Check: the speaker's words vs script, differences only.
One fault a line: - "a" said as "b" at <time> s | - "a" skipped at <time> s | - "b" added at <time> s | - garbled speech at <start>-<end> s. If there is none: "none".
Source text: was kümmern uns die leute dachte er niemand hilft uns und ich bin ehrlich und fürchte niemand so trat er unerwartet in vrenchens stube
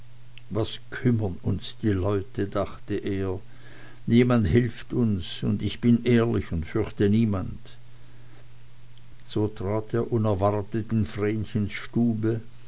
none